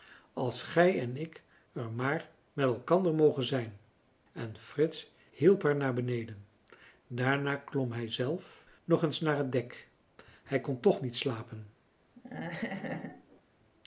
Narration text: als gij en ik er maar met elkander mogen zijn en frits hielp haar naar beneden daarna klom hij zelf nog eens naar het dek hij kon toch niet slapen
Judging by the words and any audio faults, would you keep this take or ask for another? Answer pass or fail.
fail